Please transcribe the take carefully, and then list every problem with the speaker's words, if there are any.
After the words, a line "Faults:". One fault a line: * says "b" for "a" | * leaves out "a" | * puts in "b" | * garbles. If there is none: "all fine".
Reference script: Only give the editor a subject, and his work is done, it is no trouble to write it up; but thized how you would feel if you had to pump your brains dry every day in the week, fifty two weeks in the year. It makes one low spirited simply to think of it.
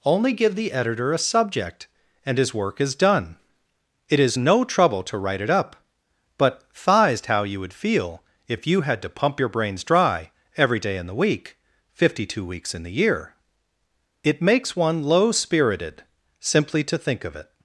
Only give the editor a subject, and his work is done, it is no trouble to write it up; but thized how you would feel if you had to pump your brains dry every day in the week, fifty two weeks in the year. It makes one low spirited simply to think of it.
Faults:
all fine